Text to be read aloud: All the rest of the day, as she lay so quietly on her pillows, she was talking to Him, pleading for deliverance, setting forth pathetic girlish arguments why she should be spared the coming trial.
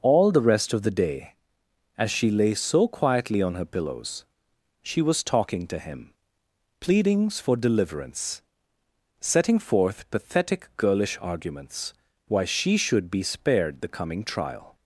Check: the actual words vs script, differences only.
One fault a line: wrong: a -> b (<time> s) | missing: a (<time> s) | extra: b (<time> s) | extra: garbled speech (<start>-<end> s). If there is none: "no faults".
wrong: pleading -> pleadings (6.8 s)